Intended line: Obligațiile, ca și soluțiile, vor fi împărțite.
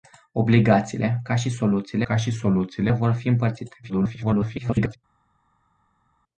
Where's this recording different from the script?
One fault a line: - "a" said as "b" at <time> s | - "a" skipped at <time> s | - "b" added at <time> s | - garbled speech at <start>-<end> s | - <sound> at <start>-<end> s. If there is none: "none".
- "ca și soluțiile" added at 2.0 s
- garbled speech at 3.8-5.0 s